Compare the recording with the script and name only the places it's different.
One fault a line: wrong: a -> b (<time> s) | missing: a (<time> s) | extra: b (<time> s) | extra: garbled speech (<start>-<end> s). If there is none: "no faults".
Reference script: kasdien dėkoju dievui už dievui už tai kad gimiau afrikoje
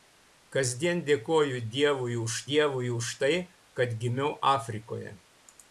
no faults